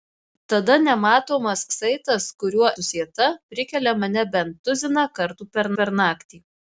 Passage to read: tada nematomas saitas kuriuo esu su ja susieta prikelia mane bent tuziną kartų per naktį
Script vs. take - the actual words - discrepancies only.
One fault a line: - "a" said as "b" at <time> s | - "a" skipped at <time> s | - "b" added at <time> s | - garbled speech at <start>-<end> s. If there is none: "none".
- "esu su ja" skipped at 2.7 s
- "per" added at 5.8 s